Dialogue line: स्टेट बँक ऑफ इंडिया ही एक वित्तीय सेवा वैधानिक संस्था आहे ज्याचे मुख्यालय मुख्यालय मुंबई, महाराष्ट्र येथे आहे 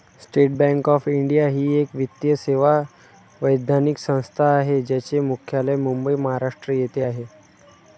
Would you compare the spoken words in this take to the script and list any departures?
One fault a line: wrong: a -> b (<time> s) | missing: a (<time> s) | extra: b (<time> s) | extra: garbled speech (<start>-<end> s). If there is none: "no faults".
missing: मुख्यालय (5.8 s)